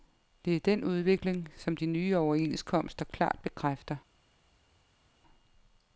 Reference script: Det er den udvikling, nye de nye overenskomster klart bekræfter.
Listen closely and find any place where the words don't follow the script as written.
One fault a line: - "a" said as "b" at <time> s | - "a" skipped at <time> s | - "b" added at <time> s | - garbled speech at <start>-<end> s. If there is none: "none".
- "nye" said as "som" at 1.6 s